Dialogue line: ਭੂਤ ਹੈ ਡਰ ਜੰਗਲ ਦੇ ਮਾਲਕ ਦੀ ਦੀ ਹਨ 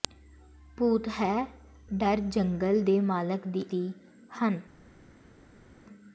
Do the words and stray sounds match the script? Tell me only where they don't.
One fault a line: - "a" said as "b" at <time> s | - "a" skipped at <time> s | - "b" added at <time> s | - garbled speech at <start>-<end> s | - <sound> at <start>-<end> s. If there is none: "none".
none